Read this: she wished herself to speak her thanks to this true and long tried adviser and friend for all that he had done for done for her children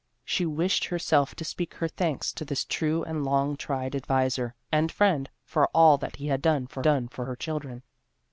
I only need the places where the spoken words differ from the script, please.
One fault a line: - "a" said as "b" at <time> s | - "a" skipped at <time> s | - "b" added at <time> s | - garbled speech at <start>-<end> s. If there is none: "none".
none